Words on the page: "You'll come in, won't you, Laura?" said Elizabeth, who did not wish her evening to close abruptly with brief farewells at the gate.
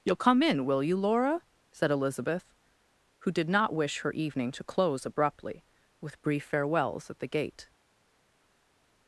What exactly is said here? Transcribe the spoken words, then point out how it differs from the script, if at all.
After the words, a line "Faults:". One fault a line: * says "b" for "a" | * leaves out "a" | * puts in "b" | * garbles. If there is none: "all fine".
"You'll come in, will you, Laura?" said Elizabeth, who did not wish her evening to close abruptly with brief farewells at the gate.
Faults:
* says "will" for "won't"